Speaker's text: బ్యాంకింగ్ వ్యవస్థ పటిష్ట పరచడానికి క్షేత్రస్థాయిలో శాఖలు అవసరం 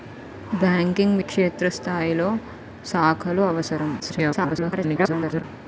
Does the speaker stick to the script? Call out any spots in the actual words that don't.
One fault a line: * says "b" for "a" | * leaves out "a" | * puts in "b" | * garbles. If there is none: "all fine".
* leaves out "వ్యవస్థ పటిష్ట పరచడానికి"
* garbles